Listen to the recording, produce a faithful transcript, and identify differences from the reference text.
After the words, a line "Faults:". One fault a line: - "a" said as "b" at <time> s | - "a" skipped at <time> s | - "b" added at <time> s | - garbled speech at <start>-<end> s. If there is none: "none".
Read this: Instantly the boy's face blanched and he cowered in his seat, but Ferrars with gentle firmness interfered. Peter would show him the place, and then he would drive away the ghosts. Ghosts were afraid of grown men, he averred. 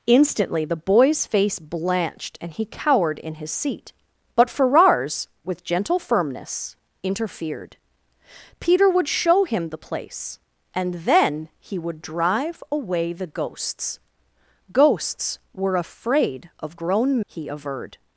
Instantly the boy's face blanched and he cowered in his seat, but Ferrars with gentle firmness interfered. Peter would show him the place, and then he would drive away the ghosts. Ghosts were afraid of grown he averred.
Faults:
- "men" skipped at 17.2 s